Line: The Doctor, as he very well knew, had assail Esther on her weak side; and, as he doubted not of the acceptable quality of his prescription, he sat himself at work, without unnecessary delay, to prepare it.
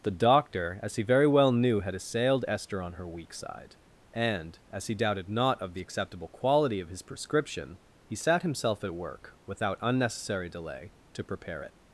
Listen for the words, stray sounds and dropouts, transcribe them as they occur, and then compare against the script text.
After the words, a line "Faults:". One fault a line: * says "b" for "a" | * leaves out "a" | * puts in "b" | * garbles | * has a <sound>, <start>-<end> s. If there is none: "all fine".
The Doctor, as he very well knew, had assailed Esther on her weak side; and, as he doubted not of the acceptable quality of his prescription, he sat himself at work, without unnecessary delay, to prepare it.
Faults:
* says "assailed" for "assail"